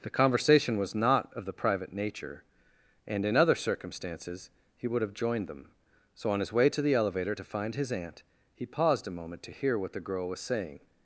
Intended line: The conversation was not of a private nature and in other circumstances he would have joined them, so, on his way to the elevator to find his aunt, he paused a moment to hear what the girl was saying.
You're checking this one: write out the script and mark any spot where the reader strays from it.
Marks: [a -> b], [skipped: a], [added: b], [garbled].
The conversation was not of [a -> the] private nature and in other circumstances he would have joined them, so, on his way to the elevator to find his aunt, he paused a moment to hear what the girl was saying.